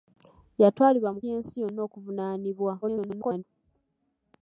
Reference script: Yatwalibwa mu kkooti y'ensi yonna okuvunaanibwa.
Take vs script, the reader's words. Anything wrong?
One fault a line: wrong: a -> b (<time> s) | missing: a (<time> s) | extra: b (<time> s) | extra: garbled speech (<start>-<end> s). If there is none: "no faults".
missing: kkooti (1.2 s)
extra: garbled speech (2.8-3.4 s)